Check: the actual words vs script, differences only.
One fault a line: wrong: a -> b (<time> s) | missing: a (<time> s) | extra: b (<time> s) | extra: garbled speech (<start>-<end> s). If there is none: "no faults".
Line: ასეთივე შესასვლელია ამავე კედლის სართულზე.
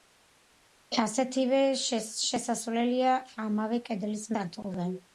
no faults